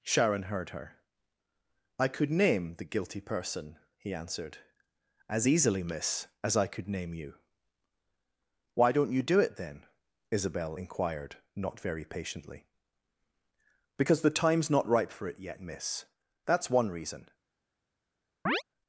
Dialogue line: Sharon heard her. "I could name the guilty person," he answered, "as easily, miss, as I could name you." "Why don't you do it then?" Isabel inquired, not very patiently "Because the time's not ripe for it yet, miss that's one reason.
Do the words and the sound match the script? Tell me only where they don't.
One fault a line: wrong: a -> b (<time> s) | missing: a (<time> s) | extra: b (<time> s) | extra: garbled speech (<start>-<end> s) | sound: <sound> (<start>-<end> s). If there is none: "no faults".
sound: chirp (18.5-18.6 s)